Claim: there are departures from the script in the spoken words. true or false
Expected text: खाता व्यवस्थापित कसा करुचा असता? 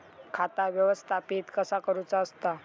false